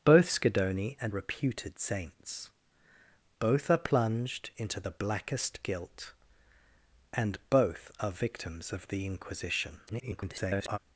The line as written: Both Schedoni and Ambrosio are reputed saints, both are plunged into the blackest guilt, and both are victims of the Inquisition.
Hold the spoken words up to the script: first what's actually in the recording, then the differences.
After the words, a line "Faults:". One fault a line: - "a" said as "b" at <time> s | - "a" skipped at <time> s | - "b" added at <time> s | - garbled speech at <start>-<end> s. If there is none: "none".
Both Schedoni and Reputed saints, both are plunged into the blackest guilt, and both are victims of the Inquisition. [garbled]
Faults:
- "Ambrosio are" skipped at 1.1 s
- garbled speech at 9.9-10.8 s